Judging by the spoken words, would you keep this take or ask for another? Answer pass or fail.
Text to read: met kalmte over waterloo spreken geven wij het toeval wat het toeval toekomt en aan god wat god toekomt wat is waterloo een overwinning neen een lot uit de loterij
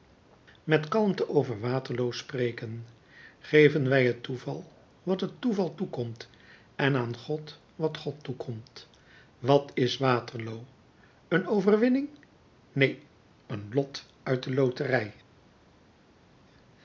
pass